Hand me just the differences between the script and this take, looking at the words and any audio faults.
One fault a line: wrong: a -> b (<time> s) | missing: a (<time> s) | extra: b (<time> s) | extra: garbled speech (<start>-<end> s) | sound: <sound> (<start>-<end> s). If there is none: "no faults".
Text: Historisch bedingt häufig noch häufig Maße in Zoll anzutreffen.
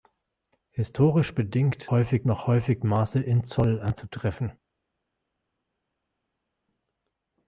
no faults